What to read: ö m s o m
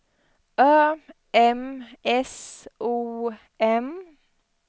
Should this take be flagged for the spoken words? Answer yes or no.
no